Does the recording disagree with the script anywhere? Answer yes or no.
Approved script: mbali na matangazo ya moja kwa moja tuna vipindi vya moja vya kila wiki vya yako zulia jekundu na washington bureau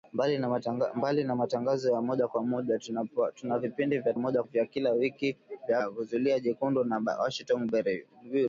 no